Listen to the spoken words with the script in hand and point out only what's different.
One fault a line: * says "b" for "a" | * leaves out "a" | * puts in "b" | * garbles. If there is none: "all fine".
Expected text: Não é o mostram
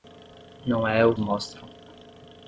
all fine